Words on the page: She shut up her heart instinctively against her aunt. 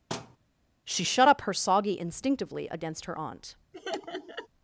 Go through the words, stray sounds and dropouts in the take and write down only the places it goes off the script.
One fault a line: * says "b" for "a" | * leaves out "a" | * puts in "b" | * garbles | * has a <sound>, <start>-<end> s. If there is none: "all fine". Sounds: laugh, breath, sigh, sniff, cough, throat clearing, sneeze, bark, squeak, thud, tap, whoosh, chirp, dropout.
* has a thud, 0.1-0.4 s
* says "soggy" for "heart"
* has a laugh, 3.7-4.5 s